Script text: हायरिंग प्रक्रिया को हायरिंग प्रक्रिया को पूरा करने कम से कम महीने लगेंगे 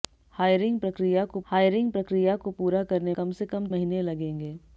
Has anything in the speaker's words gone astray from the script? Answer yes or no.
no